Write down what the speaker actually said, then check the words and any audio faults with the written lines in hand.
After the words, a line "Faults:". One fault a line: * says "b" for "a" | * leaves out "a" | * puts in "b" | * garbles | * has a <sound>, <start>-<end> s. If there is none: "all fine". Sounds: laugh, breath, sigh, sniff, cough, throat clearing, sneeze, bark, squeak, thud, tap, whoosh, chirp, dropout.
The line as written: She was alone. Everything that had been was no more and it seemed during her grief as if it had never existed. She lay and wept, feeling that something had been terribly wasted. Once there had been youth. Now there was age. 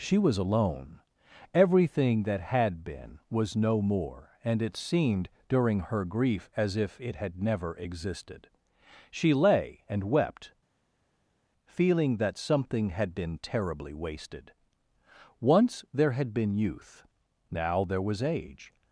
She was alone. Everything that had been was no more and it seemed during her grief as if it had never existed. She lay and wept, feeling that something had been terribly wasted. Once there had been youth. Now there was age.
Faults:
all fine